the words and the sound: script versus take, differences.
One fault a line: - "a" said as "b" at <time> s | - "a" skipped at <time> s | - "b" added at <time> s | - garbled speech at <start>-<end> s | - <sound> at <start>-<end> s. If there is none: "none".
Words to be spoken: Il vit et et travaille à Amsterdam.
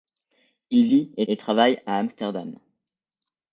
none